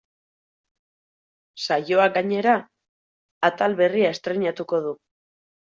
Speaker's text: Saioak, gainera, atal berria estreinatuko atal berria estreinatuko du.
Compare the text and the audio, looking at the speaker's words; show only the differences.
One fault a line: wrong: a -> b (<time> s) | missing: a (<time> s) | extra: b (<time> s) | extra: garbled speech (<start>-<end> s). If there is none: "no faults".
missing: atal berria estreinatuko (4.8 s)